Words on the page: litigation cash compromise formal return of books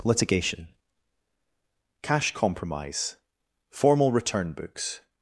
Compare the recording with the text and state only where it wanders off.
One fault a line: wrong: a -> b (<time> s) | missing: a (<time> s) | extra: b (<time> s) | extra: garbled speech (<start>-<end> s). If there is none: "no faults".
missing: of (4.5 s)